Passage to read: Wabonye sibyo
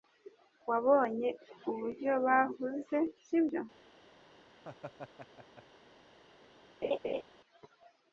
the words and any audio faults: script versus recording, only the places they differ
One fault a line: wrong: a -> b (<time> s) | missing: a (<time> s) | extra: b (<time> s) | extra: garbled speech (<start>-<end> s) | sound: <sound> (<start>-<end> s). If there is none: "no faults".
extra: uburyo bahuze (1.7 s)
sound: laugh (4.6-5.6 s)
sound: laugh (6.8-7.2 s)